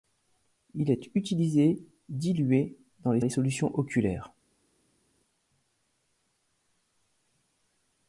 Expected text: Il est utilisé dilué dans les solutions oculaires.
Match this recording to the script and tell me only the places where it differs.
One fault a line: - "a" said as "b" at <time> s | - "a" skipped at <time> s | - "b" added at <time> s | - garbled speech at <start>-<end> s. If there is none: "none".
- "les" added at 3.2 s